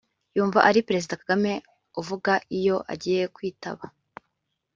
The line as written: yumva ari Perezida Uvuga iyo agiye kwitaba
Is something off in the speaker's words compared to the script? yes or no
yes